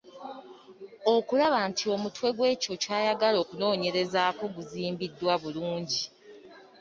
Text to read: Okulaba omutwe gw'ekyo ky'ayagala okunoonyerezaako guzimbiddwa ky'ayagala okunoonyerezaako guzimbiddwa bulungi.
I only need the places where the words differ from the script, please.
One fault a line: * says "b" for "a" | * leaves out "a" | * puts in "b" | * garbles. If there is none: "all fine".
* puts in "nti"
* leaves out "ky'ayagala okunoonyerezaako guzimbiddwa"